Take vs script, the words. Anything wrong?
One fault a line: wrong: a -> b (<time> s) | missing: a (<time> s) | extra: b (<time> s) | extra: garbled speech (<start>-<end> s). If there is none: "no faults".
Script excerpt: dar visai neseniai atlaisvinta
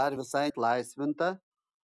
missing: neseniai (0.5 s)